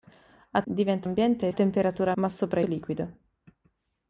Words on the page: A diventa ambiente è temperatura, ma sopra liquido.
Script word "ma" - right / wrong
right